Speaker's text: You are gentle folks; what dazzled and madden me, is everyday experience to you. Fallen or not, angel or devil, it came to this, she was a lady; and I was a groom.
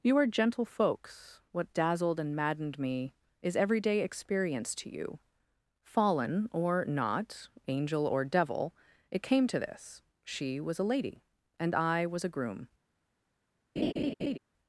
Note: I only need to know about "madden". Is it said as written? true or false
false